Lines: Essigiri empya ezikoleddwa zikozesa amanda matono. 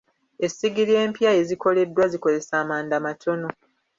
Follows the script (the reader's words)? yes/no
yes